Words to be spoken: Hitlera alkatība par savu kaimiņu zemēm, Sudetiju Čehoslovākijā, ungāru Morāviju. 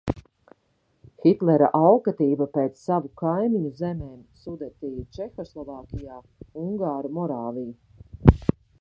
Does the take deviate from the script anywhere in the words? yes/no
yes